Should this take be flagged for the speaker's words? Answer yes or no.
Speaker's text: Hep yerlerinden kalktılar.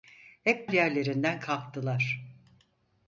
no